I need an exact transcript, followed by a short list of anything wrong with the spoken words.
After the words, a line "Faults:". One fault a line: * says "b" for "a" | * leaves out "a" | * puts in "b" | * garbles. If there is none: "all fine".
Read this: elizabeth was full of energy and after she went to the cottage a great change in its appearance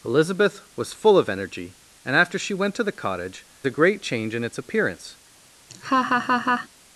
elizabeth was full of energy and after she went to the cottage a great change in its appearance
Faults:
all fine